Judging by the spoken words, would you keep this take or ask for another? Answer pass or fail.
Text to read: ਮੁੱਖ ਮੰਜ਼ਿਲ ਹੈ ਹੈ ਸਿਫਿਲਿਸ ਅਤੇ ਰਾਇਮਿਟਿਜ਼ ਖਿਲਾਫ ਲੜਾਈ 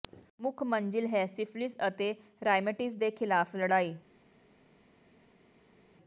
fail